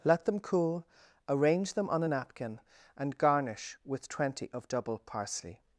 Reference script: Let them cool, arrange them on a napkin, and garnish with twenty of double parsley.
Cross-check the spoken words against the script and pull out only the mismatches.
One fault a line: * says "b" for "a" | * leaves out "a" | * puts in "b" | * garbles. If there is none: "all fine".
all fine